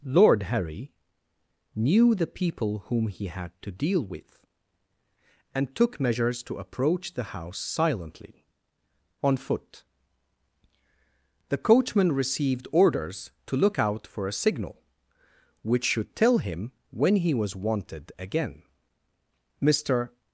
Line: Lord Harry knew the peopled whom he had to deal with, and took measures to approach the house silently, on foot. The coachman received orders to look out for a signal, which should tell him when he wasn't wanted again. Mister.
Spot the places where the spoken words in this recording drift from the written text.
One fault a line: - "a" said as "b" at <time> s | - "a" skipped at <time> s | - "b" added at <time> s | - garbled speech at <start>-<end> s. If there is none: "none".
- "peopled" said as "people" at 2.2 s
- "wasn't" said as "was" at 17.3 s